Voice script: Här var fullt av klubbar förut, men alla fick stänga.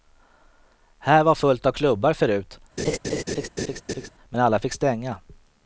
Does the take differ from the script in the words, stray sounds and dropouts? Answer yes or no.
yes